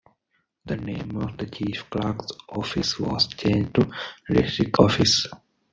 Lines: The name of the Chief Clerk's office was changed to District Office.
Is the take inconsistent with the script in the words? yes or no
no